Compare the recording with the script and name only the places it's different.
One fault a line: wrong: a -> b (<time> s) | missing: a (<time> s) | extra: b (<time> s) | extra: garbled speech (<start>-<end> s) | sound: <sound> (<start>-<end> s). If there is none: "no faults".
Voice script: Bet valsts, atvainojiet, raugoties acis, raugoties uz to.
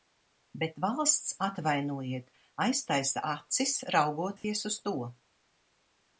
wrong: raugoties -> aiztaisa (2.6 s)
sound: dropout (4.4-4.4 s)